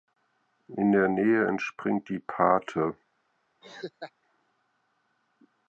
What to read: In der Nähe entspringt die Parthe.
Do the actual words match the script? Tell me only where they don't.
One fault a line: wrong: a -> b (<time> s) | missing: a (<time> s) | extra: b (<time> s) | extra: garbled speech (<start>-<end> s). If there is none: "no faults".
no faults